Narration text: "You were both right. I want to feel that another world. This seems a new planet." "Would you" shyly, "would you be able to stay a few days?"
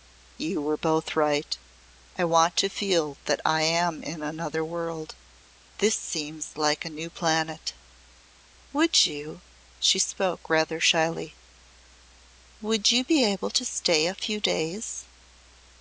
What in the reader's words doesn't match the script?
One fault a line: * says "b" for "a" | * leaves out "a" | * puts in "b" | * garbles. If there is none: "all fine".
* puts in "I am in"
* puts in "like"
* puts in "she spoke rather"